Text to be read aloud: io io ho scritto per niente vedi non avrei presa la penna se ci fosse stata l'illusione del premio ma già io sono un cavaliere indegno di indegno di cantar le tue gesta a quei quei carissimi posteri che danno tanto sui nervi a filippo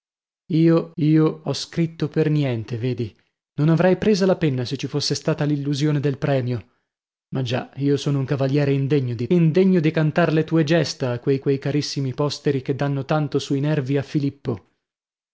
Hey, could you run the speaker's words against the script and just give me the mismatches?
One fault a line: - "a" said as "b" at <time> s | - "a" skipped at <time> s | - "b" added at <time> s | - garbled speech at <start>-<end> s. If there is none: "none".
none